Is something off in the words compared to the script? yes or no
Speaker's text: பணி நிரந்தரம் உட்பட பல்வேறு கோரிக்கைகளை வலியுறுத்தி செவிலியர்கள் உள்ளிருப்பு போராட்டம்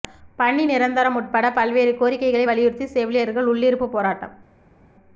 no